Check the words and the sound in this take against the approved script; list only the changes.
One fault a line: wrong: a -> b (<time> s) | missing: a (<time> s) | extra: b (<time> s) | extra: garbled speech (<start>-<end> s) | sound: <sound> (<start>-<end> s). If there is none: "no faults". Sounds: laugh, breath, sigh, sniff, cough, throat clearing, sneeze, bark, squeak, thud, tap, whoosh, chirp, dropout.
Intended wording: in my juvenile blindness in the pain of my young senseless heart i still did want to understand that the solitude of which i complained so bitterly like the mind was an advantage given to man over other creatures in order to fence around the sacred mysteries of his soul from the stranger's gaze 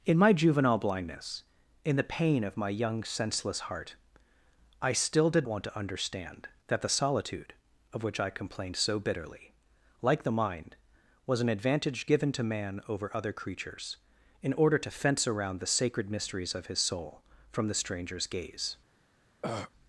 sound: throat clearing (19.4-19.7 s)